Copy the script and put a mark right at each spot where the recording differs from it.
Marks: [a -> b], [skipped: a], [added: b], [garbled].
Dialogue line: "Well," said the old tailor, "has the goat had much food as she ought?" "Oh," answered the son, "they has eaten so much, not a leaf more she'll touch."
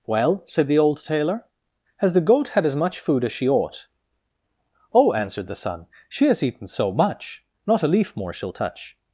"Well," said the old tailor, "has the goat had [added: as] much food as she ought?" "Oh," answered the son, ["they -> she] has eaten so much, not a leaf more she'll touch."